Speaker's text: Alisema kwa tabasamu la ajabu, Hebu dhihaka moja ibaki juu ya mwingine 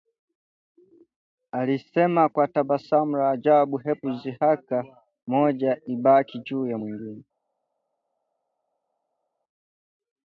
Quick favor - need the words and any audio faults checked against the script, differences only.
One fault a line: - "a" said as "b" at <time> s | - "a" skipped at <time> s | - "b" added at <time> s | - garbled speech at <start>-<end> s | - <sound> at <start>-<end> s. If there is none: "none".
none